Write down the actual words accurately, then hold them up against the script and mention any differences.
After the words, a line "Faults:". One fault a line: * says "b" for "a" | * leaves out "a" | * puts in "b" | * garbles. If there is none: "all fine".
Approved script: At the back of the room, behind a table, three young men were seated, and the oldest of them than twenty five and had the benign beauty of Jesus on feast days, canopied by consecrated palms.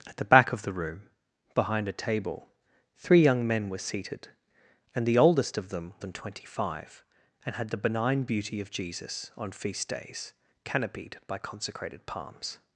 At the back of the room, behind a table, three young men were seated, and the oldest of them than twenty five and had the benign beauty of Jesus on feast days, canopied by consecrated palms.
Faults:
all fine